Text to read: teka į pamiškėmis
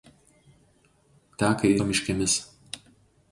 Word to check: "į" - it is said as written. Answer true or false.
true